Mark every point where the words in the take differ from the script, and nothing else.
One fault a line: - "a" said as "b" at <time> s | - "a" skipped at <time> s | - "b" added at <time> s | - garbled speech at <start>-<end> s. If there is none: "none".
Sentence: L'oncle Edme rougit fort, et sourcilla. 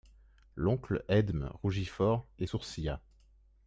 none